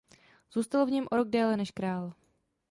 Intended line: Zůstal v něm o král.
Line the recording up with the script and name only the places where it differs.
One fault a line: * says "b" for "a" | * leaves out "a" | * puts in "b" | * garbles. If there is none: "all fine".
* puts in "rok déle než"